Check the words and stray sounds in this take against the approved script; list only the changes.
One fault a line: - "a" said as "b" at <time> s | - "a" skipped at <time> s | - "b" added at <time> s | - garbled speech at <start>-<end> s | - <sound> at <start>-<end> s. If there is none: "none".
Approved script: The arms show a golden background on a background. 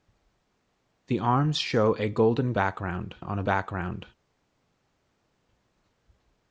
none